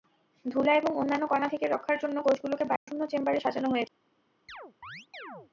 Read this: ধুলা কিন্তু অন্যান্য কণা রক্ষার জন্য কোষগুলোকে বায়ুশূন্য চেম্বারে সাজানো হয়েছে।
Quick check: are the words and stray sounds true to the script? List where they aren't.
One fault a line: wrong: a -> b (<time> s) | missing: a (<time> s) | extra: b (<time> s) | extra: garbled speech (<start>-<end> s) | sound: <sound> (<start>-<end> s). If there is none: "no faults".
wrong: কিন্তু -> এবং (0.8 s)
extra: থেকে (1.4 s)
sound: dropout (2.8-2.9 s)
sound: chirp (4.5-5.5 s)